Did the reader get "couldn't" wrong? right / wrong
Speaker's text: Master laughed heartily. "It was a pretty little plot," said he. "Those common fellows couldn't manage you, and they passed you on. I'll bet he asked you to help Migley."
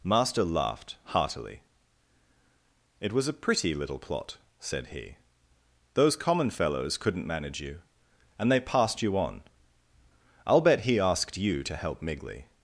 right